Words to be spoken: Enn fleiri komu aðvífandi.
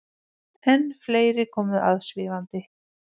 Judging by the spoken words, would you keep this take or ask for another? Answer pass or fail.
pass